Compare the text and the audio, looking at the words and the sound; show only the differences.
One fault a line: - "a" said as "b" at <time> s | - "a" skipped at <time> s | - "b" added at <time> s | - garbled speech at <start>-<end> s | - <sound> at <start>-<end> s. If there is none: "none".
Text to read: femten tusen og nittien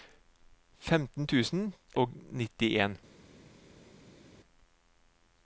none